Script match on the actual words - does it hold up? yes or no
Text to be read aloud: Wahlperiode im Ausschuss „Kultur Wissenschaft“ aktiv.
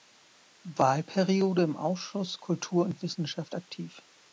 no